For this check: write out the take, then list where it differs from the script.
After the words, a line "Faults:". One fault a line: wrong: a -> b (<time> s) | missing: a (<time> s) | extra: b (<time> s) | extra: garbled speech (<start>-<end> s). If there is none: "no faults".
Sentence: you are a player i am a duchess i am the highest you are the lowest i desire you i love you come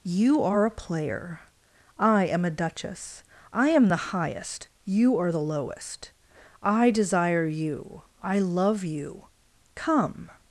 you are a player i am a duchess i am the highest you are the lowest i desire you i love you come
Faults:
no faults